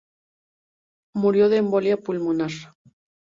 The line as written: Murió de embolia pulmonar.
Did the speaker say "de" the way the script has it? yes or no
yes